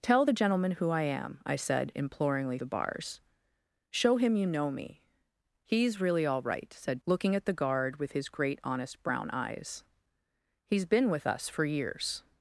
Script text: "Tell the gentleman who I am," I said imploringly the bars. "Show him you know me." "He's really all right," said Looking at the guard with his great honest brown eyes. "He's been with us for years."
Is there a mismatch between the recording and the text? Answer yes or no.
no